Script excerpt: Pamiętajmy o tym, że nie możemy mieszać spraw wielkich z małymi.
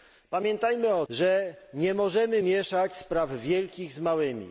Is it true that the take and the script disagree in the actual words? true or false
true